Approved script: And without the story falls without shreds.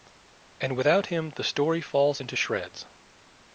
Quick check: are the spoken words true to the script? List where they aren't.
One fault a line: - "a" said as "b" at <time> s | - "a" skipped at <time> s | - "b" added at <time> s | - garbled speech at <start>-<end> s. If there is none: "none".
- "him" added at 1.1 s
- "without" said as "into" at 2.2 s